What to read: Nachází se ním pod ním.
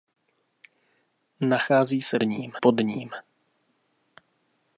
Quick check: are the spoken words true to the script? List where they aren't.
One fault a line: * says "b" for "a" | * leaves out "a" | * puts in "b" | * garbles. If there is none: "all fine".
all fine